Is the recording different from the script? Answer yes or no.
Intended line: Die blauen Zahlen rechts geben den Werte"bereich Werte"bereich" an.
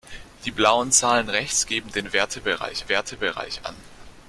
no